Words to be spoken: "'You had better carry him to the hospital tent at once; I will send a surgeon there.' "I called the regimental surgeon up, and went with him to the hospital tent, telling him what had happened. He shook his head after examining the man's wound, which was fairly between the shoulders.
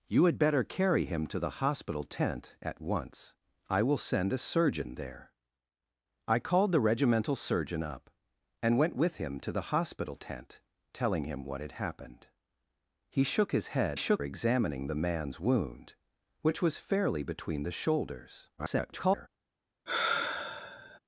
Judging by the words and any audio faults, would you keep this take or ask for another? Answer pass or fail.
fail